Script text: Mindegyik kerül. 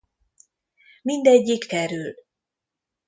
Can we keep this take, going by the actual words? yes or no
yes